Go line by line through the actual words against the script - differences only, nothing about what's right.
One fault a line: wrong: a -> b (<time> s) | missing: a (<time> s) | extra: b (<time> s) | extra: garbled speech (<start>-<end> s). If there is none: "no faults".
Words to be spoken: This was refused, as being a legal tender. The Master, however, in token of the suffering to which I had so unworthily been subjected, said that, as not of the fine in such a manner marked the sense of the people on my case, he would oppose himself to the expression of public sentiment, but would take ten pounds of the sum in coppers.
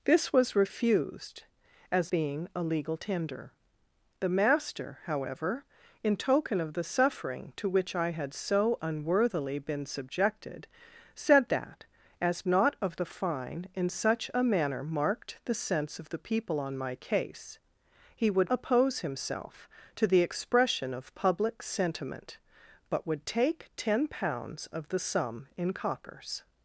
no faults